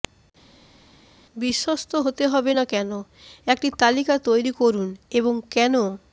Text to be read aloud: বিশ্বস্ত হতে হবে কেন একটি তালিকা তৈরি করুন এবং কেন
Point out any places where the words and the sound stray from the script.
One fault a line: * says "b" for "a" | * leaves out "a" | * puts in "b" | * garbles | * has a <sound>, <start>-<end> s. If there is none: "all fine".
* puts in "না"